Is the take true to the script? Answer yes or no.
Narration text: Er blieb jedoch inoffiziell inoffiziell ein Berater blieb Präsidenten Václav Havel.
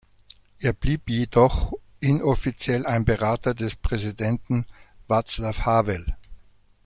no